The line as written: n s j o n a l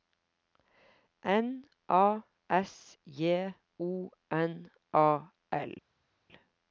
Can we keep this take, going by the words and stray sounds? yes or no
no